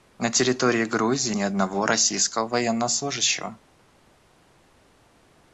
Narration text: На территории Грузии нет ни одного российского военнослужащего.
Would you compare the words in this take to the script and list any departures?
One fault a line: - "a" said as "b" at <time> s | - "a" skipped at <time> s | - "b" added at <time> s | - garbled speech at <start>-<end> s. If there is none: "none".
- "нет" skipped at 1.4 s